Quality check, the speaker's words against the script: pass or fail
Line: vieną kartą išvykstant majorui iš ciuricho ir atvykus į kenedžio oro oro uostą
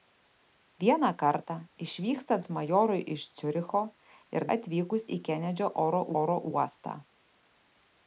pass